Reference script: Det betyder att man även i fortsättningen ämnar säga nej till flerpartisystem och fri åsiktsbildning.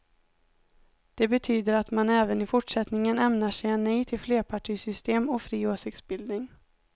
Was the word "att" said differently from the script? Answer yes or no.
no